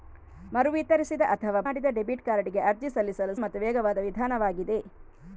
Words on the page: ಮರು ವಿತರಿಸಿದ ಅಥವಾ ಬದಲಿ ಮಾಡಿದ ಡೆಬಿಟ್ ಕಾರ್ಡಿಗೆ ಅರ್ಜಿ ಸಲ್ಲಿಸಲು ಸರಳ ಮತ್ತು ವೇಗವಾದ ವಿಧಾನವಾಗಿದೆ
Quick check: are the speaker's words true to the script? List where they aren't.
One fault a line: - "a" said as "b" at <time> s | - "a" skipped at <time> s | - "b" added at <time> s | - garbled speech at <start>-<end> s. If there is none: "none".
- "ಬದಲಿ" skipped at 1.6 s
- "ಸರಳ" skipped at 3.3 s